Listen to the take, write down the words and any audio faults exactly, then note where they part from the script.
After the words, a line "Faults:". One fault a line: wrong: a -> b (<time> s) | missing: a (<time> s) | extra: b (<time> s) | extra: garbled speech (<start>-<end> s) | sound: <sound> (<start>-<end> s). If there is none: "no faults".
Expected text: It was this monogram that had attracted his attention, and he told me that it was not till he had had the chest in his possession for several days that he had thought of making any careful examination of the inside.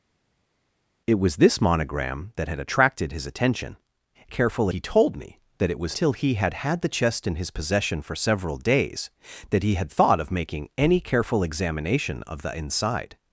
It was this monogram that had attracted his attention, careful he told me that it was till he had had the chest in his possession for several days that he had thought of making any careful examination of the inside.
Faults:
wrong: and -> careful (4.3 s)
missing: not (6.0 s)